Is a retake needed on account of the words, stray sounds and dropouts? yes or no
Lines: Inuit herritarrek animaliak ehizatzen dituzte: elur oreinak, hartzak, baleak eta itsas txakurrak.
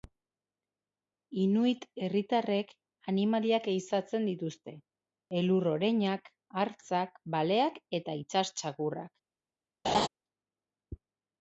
yes